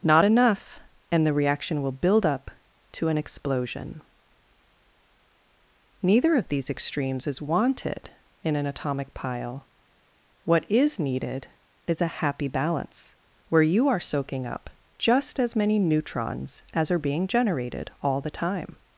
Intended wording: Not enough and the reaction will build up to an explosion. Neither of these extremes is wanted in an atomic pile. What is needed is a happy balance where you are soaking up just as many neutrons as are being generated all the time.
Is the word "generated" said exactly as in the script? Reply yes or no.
yes